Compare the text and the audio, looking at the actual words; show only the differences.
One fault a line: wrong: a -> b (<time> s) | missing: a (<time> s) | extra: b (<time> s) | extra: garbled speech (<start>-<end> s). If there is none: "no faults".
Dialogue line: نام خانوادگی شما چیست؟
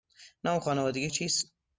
missing: شما (1.1 s)